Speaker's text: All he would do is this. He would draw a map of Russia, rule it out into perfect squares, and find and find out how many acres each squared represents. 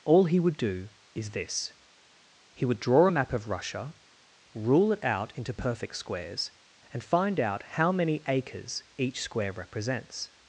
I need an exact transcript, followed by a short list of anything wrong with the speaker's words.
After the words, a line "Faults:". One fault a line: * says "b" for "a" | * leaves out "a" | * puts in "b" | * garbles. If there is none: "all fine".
All he would do is this. He would draw a map of Russia, rule it out into perfect squares, and find out how many acres each square represents.
Faults:
* leaves out "and find"
* says "square" for "squared"